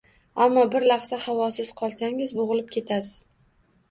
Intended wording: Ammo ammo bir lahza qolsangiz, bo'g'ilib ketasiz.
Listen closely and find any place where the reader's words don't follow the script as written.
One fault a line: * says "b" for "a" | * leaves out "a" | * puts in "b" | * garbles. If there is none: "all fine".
* leaves out "ammo"
* puts in "havosiz"